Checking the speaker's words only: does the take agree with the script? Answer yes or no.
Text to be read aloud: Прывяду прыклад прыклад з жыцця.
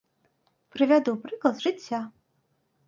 no